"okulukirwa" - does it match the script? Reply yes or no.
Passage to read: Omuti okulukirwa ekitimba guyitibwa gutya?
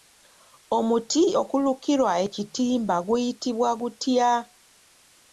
yes